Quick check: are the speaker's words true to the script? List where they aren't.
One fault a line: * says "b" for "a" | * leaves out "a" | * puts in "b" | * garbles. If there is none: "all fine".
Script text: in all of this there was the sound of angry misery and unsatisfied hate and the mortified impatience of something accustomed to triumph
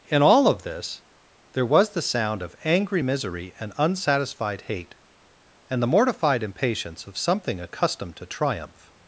all fine